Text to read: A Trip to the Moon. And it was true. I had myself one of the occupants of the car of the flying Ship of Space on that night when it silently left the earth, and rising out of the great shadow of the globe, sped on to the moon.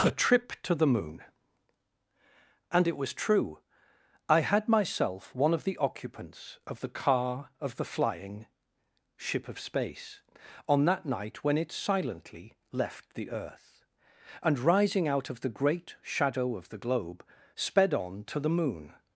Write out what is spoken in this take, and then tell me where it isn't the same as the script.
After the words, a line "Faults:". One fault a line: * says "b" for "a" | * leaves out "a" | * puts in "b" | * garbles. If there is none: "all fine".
A Trip to the Moon. And it was true. I had myself one of the occupants of the car of the flying Ship of Space on that night when it silently left the earth, and rising out of the great shadow of the globe, sped on to the moon.
Faults:
all fine